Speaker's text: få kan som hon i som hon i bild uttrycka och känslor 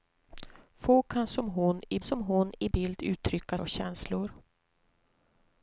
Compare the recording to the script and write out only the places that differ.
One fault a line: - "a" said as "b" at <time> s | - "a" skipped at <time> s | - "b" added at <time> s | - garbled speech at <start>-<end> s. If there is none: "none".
none